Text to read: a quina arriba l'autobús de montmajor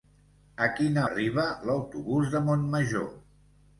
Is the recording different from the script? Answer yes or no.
no